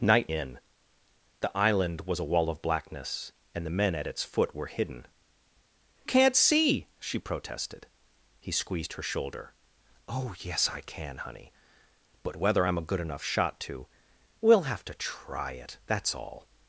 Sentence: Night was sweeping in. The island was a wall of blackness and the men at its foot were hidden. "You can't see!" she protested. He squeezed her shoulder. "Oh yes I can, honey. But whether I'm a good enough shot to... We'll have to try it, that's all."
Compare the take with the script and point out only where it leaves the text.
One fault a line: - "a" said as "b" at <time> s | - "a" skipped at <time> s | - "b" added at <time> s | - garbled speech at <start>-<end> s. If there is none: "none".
- "was sweeping" skipped at 0.3 s
- "You" skipped at 5.1 s